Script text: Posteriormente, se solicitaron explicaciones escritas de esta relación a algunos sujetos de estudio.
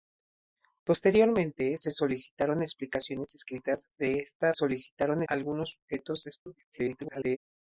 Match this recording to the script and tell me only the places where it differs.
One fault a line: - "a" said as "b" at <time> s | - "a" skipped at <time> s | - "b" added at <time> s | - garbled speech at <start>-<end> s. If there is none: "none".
- "relación" said as "solicitaron" at 4.5 s
- garbled speech at 6.7-7.4 s